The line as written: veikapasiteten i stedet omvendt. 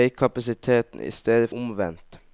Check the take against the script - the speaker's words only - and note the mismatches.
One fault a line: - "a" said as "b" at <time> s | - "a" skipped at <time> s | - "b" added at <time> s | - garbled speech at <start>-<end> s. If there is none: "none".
none